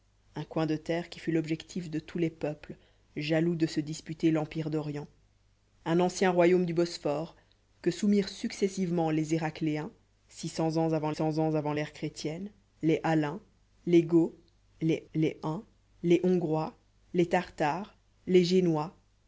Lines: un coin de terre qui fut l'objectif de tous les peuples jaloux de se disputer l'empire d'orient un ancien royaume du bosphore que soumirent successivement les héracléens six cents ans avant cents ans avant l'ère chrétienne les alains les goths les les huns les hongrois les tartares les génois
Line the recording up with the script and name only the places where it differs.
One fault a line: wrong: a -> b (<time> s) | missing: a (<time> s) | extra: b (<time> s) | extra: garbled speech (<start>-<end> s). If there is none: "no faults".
no faults